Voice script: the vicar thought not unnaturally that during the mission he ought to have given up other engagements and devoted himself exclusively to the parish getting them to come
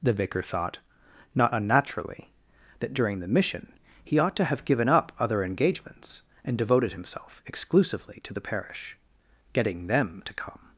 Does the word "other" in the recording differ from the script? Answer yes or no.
no